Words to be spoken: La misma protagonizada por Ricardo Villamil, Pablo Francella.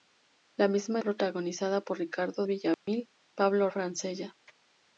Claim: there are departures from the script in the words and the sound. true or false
true